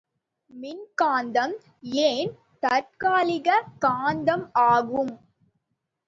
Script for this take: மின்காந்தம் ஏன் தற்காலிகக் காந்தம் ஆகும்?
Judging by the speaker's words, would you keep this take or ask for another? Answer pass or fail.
pass